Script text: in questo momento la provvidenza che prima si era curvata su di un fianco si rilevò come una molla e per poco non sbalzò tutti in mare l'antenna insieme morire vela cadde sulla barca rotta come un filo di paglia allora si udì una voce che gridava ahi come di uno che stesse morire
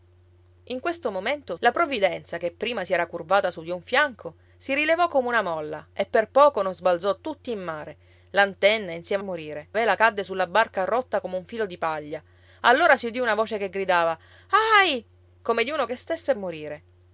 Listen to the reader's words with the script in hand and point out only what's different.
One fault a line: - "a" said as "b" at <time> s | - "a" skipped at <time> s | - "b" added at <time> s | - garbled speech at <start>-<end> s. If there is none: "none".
none